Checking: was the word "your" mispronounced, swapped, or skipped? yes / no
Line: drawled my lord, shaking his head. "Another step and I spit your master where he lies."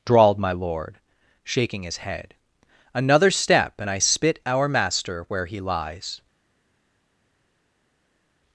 yes